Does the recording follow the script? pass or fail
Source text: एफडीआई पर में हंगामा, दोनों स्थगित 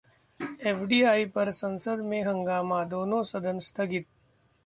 fail